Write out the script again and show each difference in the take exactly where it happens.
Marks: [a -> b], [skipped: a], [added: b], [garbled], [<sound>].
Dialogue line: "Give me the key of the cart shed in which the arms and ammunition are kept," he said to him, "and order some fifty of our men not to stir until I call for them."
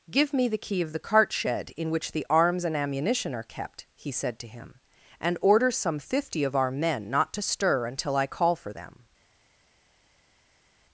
"Give me the key of the cart shed in which the arms and ammunition are kept," he said to him, "and order some fifty of our men not to stir until I call for them."